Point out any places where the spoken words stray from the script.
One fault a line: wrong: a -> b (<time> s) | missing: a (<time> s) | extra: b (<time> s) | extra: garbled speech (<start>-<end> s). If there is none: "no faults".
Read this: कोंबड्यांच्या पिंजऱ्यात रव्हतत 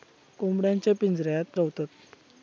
no faults